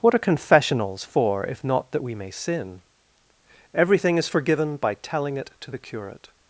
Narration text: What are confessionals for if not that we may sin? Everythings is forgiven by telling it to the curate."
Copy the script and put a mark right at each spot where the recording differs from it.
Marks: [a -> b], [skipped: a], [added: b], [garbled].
What are confessionals for if not that we may sin? [Everythings -> Everything] is forgiven by telling it to the curate."